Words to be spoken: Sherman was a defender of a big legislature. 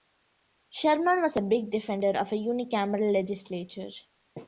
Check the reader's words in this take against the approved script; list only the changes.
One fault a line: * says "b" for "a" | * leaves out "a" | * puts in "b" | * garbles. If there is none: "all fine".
* puts in "big"
* says "unicameral" for "big"